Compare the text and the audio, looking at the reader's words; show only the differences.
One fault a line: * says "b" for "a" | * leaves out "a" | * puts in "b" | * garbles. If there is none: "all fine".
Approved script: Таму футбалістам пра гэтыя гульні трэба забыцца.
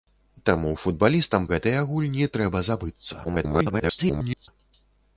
* leaves out "пра"
* garbles